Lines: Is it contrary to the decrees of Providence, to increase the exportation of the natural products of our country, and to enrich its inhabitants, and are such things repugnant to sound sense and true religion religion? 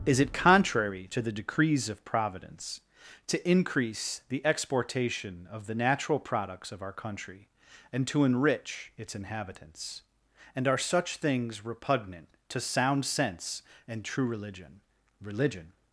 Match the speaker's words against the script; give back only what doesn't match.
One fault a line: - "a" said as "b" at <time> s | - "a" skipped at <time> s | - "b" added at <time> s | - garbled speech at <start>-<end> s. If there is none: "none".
none